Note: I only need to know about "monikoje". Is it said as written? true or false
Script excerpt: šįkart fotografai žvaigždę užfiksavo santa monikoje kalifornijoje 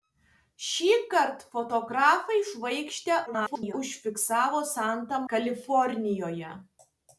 false